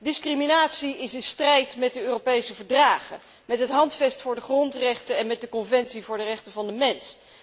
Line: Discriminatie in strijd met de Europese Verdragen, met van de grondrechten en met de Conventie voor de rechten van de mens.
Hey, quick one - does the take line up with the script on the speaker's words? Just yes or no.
no